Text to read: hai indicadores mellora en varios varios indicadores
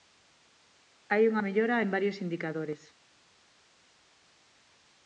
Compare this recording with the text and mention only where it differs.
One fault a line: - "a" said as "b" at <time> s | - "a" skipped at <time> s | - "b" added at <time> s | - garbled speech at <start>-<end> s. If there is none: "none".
- "indicadores" said as "unha" at 1.3 s
- "varios" skipped at 2.2 s